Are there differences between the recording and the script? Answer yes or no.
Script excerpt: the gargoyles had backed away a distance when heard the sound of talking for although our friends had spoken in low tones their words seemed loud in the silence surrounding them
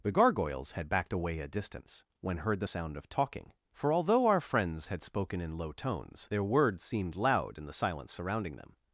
no